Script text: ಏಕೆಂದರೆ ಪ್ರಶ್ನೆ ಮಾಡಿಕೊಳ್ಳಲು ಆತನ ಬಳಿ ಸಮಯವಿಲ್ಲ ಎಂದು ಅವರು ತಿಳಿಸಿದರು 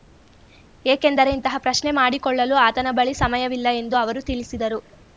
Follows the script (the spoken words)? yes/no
no